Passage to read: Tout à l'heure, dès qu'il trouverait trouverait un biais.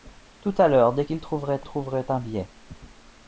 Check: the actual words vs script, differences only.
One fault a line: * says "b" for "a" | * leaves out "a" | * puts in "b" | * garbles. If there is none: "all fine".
all fine